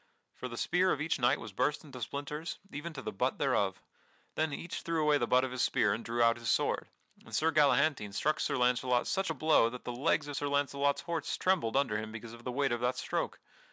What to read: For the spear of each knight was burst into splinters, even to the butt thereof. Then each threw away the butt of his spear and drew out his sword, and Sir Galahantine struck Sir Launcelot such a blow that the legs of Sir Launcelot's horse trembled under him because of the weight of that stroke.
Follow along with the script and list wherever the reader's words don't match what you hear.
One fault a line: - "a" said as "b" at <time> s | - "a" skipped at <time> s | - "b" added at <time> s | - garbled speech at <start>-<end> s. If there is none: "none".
none